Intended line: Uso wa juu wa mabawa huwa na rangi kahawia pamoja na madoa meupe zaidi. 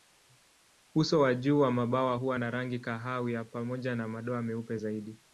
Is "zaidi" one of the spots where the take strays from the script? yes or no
no